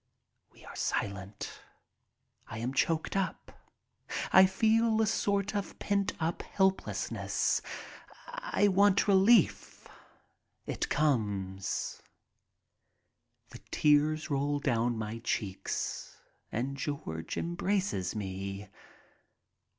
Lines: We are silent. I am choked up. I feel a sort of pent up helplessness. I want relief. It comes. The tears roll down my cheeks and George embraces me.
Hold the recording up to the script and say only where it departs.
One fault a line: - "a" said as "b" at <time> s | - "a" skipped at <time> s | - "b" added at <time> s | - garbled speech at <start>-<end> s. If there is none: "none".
none